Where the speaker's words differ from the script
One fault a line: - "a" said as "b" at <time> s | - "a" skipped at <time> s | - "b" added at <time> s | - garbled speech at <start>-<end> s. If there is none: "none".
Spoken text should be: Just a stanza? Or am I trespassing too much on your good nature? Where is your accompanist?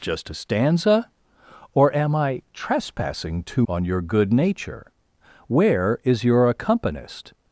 - "much" skipped at 3.7 s